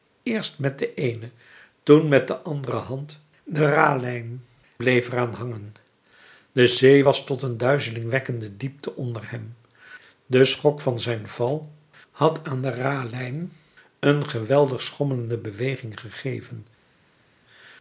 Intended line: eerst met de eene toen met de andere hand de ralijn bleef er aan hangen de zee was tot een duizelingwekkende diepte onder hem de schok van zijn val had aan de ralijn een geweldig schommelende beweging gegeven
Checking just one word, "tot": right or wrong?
right